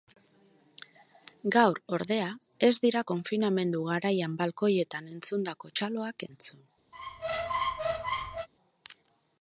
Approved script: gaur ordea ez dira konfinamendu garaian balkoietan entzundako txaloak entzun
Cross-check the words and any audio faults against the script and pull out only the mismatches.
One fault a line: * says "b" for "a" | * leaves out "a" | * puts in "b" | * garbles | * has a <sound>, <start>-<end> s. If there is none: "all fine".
* has a squeak, 6.9-8.5 s